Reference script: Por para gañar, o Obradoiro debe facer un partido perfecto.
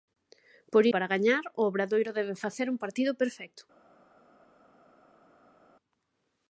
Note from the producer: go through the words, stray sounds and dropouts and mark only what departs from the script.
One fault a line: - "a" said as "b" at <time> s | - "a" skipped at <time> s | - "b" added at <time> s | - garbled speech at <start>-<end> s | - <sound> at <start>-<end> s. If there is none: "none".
none